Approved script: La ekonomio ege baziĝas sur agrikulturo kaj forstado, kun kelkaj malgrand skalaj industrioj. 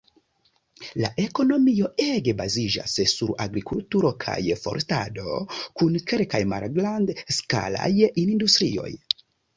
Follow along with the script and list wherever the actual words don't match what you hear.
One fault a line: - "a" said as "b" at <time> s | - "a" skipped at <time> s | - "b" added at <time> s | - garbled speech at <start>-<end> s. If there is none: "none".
none